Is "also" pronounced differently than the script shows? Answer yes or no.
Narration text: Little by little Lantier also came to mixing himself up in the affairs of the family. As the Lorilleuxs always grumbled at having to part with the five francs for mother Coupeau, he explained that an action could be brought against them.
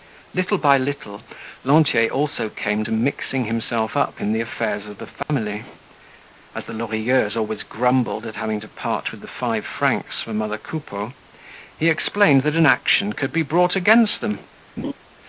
no